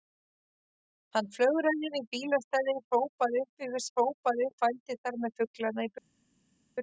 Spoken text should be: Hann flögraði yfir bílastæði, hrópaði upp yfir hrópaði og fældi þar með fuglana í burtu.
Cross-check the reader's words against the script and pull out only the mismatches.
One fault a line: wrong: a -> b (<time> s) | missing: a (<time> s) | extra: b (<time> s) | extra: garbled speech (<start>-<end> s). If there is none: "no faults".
no faults